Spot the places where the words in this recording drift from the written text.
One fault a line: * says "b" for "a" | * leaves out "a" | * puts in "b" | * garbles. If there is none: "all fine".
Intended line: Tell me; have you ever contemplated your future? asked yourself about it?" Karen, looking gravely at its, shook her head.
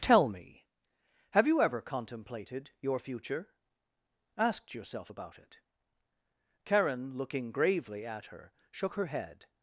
* says "her" for "its"